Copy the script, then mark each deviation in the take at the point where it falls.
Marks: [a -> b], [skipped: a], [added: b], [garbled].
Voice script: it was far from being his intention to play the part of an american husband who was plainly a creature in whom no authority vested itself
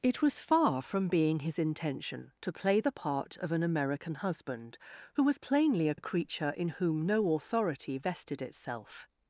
it was far from being his intention to play the part of an american husband who was plainly a [added: a] creature in whom no authority vested itself